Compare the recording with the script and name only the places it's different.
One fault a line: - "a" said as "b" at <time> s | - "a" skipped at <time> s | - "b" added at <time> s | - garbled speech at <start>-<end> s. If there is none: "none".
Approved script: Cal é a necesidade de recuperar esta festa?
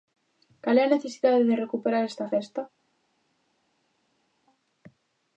none